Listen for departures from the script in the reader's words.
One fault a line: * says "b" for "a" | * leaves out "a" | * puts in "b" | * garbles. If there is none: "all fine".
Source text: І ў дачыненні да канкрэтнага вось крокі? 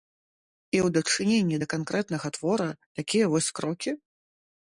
* puts in "твора такія"